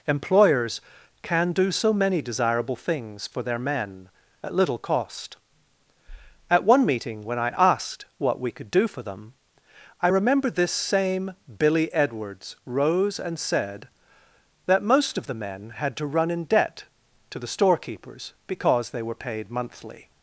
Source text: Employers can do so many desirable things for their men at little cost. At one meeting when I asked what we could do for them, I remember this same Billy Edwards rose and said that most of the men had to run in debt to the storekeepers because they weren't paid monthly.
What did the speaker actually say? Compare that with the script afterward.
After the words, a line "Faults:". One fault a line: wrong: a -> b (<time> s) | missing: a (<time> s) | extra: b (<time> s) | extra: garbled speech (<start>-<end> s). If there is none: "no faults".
Employers can do so many desirable things for their men at little cost. At one meeting when I asked what we could do for them, I remember this same Billy Edwards rose and said that most of the men had to run in debt to the storekeepers because they were paid monthly.
Faults:
wrong: weren't -> were (19.0 s)